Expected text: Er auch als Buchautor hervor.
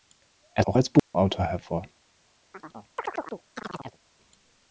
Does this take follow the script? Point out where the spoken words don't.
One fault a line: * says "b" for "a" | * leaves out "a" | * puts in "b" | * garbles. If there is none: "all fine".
all fine